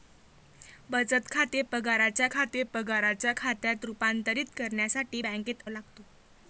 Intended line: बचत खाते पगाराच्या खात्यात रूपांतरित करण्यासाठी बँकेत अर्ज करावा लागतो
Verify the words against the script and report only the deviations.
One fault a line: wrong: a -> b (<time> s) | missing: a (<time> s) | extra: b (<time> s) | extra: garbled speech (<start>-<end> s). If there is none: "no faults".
extra: खाते पगाराच्या (2.3 s)
missing: अर्ज करावा (5.6 s)